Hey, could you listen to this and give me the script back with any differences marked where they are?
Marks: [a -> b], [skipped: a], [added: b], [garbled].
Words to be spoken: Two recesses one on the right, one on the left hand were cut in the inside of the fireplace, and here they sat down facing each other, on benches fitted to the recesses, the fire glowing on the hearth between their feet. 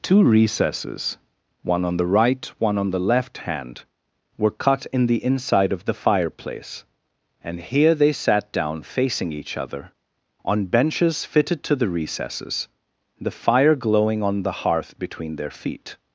Two recesses one on the right, one on the left hand were cut in the inside of the fireplace, and here they sat down facing each other, on benches fitted to the recesses, the fire glowing on the hearth between their feet.